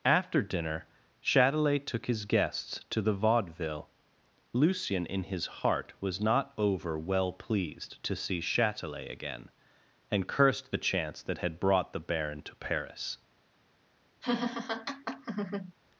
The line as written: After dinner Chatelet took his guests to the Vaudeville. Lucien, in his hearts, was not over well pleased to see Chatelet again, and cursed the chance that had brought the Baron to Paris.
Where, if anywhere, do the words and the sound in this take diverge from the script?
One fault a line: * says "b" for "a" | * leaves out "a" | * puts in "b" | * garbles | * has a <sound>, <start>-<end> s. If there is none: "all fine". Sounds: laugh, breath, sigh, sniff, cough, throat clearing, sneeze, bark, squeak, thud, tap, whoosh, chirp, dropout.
* says "heart" for "hearts"
* has a laugh, 14.2-15.7 s